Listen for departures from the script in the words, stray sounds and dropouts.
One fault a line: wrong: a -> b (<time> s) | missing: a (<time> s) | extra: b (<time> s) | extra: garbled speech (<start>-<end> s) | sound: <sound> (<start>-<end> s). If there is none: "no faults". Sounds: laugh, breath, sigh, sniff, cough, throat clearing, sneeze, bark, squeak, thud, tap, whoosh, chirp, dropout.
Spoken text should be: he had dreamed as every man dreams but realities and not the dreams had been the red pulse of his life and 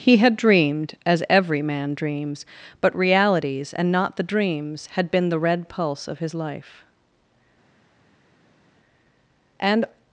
no faults